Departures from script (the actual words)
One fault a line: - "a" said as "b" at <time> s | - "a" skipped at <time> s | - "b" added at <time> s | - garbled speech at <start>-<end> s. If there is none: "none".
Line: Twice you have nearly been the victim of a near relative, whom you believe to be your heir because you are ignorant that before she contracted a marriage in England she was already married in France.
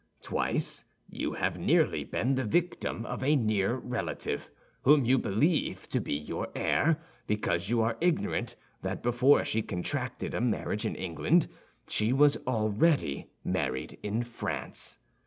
none